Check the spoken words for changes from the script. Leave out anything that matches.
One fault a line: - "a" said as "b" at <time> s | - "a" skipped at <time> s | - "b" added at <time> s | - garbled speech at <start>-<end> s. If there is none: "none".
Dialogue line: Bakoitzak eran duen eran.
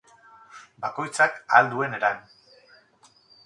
- "eran" said as "ahal" at 1.5 s